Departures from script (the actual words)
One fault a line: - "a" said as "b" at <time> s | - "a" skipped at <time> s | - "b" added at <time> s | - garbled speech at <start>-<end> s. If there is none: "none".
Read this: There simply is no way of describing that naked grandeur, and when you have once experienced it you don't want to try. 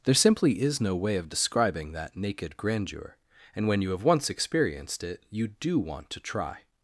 - "don't" said as "do" at 5.5 s